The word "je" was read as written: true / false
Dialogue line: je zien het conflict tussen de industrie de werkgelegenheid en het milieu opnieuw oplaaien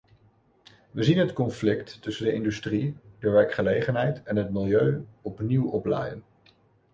false